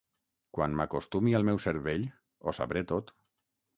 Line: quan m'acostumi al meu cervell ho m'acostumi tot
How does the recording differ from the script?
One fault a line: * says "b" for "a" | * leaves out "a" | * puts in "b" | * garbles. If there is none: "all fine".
* says "sabré" for "m'acostumi"